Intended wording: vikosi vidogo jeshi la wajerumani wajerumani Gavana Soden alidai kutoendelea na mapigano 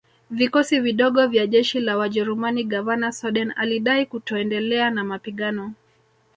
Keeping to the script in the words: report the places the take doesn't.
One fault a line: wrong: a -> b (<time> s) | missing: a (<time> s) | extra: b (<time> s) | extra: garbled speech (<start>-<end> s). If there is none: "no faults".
extra: vya (1.3 s)
missing: wajerumani (2.6 s)